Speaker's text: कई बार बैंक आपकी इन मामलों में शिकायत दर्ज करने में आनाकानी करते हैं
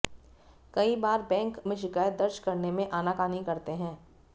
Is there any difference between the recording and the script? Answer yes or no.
yes